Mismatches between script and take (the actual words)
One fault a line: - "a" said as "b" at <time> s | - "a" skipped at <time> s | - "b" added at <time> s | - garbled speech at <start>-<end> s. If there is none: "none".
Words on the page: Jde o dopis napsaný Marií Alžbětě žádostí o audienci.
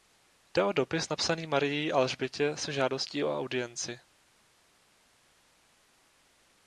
- "se" added at 2.6 s